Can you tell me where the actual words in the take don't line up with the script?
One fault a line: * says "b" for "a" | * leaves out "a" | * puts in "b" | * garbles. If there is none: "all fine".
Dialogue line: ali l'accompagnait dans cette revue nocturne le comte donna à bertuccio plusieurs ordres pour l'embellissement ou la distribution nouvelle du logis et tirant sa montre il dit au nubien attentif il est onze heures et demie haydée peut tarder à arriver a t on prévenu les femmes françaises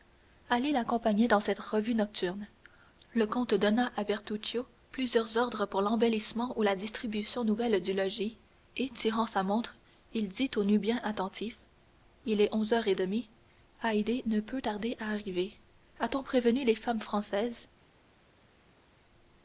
* puts in "ne"